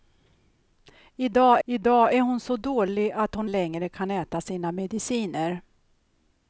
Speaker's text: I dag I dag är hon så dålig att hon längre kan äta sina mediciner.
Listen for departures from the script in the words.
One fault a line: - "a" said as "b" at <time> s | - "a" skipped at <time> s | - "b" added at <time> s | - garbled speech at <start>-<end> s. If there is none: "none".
none